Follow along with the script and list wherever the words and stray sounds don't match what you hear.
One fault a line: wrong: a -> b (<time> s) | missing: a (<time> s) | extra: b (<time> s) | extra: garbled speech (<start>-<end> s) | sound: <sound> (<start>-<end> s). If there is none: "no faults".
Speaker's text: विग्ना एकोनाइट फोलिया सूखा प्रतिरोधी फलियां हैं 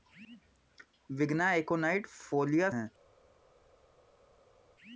missing: सूखा प्रतिरोधी फलियां (2.7 s)